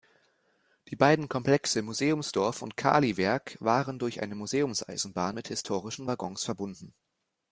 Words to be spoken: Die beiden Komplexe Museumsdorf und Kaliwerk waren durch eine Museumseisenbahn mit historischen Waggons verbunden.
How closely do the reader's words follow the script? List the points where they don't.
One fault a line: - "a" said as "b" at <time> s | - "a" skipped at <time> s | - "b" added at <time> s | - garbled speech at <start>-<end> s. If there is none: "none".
none